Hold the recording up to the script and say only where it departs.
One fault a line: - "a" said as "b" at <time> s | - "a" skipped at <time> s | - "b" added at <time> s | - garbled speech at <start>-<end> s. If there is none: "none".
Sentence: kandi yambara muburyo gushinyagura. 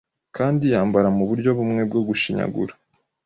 - "bumwe bwo" added at 1.6 s